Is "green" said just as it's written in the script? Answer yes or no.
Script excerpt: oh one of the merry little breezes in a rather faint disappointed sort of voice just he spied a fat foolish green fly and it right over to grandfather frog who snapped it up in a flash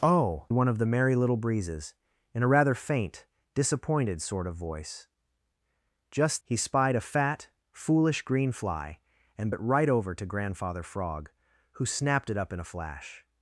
yes